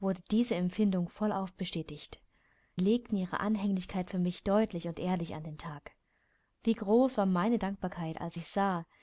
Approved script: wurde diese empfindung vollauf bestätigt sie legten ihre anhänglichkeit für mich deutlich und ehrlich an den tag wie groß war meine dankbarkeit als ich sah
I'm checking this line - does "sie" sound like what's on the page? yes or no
no